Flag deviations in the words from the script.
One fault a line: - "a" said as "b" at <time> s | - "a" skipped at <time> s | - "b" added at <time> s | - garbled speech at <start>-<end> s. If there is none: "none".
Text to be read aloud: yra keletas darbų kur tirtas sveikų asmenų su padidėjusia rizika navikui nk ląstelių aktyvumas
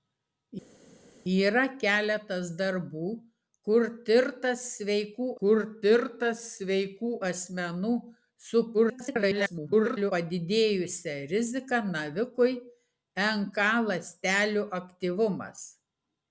- "kur tirtas sveikų" added at 5.4 s
- garbled speech at 8.7-10.1 s